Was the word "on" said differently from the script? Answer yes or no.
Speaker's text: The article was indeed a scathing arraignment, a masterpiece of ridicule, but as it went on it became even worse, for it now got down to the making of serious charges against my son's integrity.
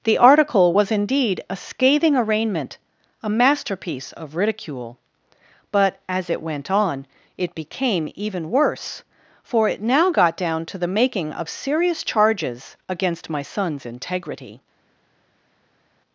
no